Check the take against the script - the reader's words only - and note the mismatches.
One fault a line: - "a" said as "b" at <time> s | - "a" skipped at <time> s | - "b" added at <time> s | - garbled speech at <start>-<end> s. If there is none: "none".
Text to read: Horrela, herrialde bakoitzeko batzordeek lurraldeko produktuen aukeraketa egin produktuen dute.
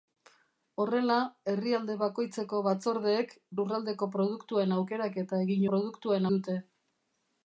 none